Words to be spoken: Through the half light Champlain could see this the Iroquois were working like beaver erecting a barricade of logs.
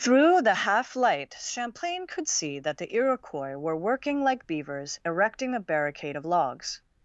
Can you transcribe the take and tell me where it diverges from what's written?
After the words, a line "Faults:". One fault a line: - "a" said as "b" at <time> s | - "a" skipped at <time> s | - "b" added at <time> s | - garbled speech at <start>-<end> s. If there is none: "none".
Through the half light Champlain could see that the Iroquois were working like beavers erecting a barricade of logs.
Faults:
- "this" said as "that" at 2.6 s
- "beaver" said as "beavers" at 4.5 s